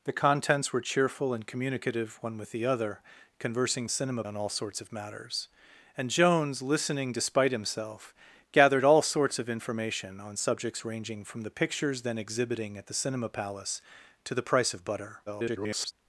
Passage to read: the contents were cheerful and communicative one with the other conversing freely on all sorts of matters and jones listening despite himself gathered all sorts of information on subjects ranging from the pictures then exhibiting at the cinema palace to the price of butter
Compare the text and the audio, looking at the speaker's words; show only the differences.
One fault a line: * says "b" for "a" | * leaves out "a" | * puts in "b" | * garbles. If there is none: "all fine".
* says "cinema" for "freely"
* garbles